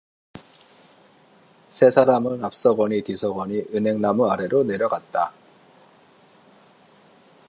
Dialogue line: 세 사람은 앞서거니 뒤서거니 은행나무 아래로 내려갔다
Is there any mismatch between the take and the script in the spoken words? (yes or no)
no